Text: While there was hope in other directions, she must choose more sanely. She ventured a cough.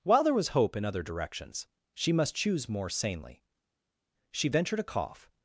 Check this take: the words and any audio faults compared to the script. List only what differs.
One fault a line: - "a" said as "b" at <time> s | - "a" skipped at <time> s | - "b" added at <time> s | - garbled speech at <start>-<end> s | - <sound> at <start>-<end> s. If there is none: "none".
none